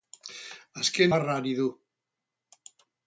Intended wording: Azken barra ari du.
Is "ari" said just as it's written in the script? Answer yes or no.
yes